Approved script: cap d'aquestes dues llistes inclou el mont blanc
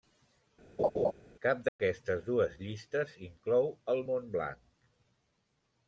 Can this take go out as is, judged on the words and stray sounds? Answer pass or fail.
fail